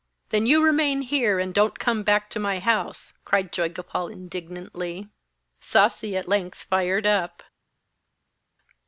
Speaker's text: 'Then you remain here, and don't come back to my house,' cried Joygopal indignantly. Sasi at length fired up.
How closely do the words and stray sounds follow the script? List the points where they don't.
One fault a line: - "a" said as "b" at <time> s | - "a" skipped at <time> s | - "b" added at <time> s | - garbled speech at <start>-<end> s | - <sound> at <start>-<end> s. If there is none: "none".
none